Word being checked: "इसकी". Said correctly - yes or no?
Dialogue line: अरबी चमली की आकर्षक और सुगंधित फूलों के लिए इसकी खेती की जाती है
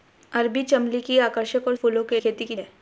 no